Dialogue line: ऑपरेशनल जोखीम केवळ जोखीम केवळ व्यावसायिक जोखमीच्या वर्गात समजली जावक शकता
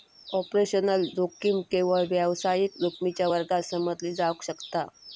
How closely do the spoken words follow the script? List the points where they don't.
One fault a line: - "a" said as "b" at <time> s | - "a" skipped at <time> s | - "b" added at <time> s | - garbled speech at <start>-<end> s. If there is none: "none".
- "जोखीम केवळ" skipped at 2.0 s